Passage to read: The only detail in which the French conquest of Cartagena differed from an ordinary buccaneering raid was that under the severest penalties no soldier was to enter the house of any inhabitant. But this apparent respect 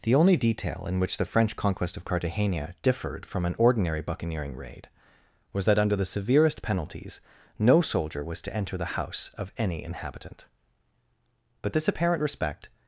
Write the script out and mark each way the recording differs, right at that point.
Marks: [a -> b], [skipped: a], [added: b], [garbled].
The only detail in which the French conquest of Cartagena differed from an ordinary buccaneering raid was that under the severest penalties no soldier was to enter the house of any inhabitant. But this apparent respect